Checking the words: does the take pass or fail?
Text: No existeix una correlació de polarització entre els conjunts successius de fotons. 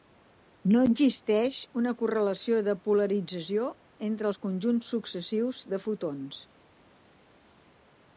pass